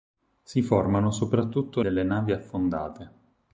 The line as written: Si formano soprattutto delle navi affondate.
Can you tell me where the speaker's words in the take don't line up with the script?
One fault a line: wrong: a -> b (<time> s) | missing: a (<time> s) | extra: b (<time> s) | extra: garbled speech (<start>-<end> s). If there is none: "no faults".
no faults